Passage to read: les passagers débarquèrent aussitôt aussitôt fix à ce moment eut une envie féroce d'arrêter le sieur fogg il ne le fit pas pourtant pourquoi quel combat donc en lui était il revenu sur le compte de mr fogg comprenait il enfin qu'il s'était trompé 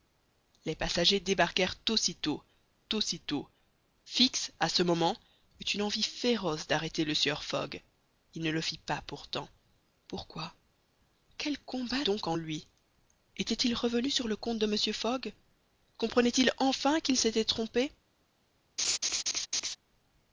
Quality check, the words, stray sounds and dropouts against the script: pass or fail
fail